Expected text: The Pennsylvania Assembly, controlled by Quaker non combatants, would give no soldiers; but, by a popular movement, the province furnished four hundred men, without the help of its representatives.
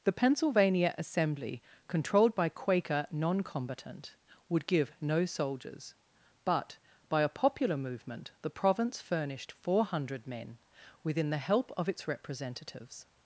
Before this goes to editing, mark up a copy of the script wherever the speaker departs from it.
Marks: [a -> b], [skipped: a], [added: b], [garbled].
The Pennsylvania Assembly, controlled by Quaker non [combatants, -> combatant] would give no soldiers; but, by a popular movement, the province furnished four hundred men, [without -> within] the help of its representatives.